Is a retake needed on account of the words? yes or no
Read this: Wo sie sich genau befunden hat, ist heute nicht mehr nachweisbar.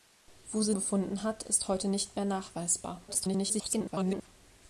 yes